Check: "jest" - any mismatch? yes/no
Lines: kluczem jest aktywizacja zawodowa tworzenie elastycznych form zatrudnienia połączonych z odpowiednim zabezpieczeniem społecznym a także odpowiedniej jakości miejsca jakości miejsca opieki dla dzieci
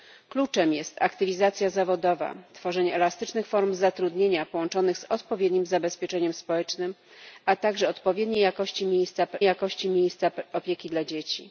no